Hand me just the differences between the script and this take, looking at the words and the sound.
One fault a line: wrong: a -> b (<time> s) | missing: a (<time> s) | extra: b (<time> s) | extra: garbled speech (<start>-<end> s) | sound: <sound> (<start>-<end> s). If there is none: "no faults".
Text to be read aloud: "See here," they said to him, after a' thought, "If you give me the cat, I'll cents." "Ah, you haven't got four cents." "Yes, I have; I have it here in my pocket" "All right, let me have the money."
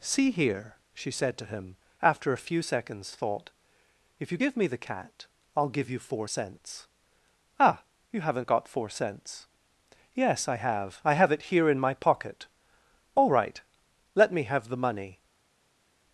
wrong: they -> she (0.9 s)
extra: few seconds (2.5 s)
extra: give you four (5.7 s)